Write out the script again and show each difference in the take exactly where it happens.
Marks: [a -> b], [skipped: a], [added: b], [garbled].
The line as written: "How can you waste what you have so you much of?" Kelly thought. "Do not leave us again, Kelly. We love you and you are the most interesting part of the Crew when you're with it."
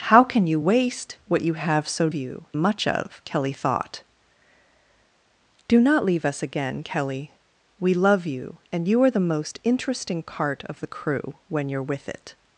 "How can you waste what you have so you much of?" Kelly thought. "Do not leave us again, Kelly. We love you and you are the most interesting part of the Crew when you're with it."